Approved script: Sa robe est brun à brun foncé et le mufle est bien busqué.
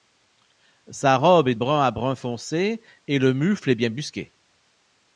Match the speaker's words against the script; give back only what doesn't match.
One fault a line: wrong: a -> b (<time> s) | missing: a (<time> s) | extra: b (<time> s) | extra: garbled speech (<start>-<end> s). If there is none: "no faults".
no faults